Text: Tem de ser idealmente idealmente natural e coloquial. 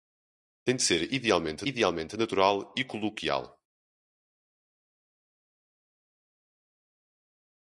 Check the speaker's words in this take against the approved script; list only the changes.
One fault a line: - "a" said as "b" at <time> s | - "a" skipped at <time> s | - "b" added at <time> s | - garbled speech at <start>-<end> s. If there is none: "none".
none